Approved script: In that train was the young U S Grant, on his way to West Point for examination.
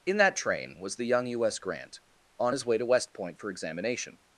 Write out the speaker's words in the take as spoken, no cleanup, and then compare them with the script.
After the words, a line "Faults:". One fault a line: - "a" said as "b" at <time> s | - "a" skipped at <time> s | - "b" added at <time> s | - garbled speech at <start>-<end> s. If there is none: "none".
In that train was the young U S Grant, on his way to West Point for examination.
Faults:
none